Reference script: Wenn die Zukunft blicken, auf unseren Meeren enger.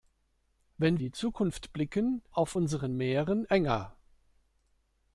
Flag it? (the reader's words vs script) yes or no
no